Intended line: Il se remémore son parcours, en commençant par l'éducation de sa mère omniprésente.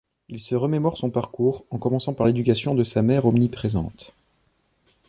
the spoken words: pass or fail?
pass